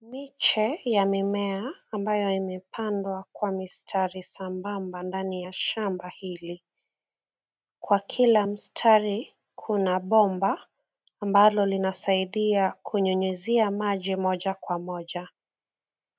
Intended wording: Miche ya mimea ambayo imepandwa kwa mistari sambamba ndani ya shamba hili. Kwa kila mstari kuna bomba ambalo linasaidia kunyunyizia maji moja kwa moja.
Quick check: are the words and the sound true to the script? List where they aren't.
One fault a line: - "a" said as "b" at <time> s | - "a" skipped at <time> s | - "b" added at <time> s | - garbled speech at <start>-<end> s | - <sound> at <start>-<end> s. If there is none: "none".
none